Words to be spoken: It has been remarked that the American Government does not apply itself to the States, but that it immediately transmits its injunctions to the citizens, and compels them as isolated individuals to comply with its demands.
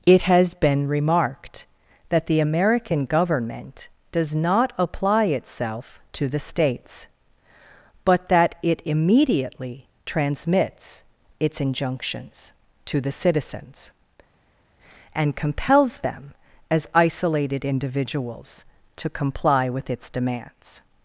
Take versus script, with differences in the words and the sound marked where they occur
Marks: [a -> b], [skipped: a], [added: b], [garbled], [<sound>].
It has been remarked that the American Government does not apply itself to the States, but that it immediately transmits its injunctions to the citizens, and compels them as isolated individuals to comply with its demands.